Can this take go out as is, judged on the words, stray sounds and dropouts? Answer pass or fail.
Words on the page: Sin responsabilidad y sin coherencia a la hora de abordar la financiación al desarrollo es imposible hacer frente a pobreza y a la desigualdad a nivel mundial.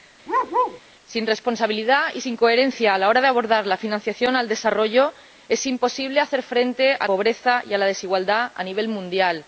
fail